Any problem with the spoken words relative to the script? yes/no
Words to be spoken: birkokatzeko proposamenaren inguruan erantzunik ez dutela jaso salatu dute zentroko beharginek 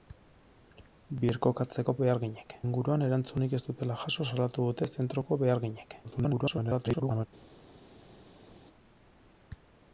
yes